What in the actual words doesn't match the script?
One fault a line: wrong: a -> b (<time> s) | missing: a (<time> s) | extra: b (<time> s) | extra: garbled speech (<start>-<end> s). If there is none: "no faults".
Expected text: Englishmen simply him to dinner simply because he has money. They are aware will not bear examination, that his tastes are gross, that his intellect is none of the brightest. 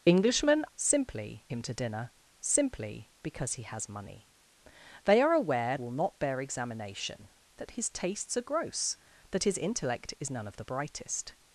no faults